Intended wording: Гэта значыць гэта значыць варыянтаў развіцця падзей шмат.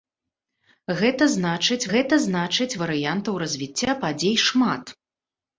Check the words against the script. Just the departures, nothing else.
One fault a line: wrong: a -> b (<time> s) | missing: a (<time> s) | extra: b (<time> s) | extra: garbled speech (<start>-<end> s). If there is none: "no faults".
no faults